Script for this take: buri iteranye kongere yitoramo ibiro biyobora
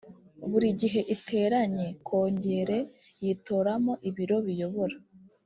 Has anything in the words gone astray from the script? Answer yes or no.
yes